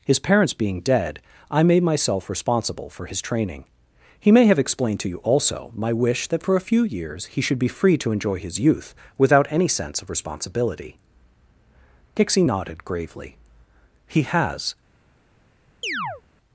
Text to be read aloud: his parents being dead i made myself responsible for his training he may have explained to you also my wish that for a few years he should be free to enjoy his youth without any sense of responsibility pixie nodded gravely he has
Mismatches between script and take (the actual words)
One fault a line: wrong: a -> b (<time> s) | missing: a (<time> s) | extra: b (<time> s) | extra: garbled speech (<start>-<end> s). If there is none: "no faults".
no faults